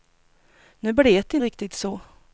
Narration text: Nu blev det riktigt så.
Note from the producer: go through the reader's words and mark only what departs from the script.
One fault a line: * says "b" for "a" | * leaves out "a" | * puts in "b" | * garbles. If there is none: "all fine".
all fine